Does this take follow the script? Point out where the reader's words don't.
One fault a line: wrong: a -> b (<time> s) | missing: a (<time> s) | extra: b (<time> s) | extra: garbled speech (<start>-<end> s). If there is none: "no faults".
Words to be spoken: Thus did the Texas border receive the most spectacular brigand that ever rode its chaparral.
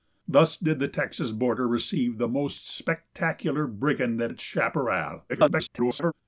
missing: ever rode (4.3 s)
extra: garbled speech (5.3-6.1 s)